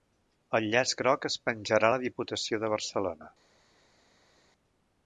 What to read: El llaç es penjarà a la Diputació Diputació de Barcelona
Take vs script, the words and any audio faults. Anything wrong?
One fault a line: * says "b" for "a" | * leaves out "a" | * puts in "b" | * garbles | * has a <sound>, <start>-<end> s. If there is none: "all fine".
* puts in "groc"
* leaves out "Diputació"